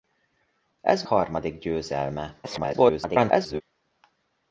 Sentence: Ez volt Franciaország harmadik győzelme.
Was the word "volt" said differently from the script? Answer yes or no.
yes